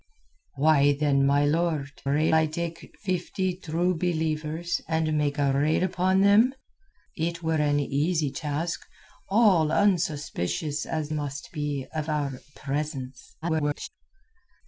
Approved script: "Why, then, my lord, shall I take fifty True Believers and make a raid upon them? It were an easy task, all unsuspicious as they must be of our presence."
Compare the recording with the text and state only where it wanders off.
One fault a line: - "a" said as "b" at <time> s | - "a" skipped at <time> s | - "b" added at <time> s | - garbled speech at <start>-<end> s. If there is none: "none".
- "shall" said as "raid" at 2.1 s
- "they" skipped at 11.1 s
- garbled speech at 13.4-13.9 s